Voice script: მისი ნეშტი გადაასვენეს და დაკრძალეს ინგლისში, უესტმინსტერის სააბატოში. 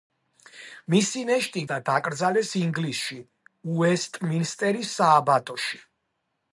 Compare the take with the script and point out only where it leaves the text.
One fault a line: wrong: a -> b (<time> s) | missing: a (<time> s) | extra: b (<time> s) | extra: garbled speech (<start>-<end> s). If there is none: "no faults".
missing: გადაასვენეს (1.6 s)